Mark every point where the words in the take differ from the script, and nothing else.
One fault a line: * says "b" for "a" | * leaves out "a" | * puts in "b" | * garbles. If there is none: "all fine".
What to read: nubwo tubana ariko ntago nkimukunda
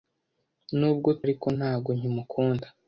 * leaves out "tubana"